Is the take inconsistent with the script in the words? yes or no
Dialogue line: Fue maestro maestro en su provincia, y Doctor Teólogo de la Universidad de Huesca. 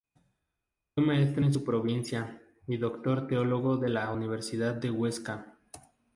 yes